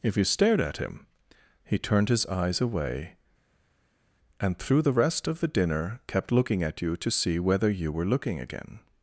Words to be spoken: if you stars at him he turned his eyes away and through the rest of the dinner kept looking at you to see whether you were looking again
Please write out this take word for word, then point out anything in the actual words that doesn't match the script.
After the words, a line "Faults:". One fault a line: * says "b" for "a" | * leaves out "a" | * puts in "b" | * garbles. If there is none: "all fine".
if you stared at him he turned his eyes away and through the rest of the dinner kept looking at you to see whether you were looking again
Faults:
* says "stared" for "stars"